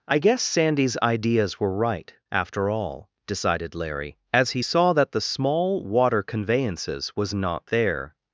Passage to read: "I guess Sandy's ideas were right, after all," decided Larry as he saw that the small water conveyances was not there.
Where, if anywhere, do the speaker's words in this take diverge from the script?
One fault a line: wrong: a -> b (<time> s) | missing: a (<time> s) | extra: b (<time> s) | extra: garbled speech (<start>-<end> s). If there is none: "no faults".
no faults